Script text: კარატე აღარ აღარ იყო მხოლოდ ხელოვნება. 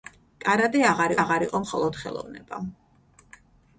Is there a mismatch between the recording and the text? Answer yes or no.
no